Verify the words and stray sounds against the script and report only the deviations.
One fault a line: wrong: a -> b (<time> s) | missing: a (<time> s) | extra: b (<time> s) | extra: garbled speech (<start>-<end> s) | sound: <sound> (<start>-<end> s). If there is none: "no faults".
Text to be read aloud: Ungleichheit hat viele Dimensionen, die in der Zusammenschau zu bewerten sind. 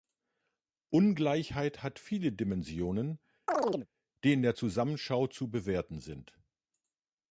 sound: chirp (3.5-3.9 s)